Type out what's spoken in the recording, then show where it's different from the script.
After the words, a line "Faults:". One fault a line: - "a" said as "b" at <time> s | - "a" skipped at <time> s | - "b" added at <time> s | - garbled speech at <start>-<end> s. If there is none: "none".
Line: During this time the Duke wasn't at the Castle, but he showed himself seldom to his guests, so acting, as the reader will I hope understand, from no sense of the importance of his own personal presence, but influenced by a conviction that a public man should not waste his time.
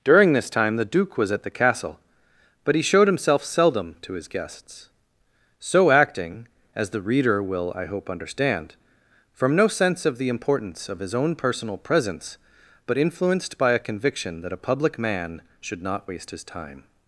During this time the Duke was at the Castle, but he showed himself seldom to his guests, so acting, as the reader will I hope understand, from no sense of the importance of his own personal presence, but influenced by a conviction that a public man should not waste his time.
Faults:
- "wasn't" said as "was" at 1.1 s